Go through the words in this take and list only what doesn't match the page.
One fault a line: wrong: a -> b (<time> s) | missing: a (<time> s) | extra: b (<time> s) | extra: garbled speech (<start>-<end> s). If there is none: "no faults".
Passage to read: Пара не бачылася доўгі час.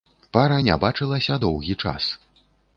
no faults